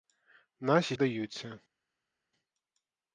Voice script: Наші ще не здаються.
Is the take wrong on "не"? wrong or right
wrong